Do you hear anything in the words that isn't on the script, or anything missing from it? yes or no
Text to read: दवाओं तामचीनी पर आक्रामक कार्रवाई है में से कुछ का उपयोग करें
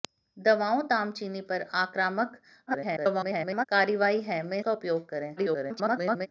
yes